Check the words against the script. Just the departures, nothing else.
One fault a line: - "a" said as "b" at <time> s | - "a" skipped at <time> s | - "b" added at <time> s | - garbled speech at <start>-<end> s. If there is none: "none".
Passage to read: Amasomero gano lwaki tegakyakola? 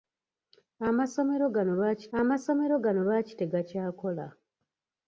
- "amasomero gano lwaki" added at 2.2 s